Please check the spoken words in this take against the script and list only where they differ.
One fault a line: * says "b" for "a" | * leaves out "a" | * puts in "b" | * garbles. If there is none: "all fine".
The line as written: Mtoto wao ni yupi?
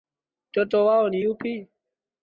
all fine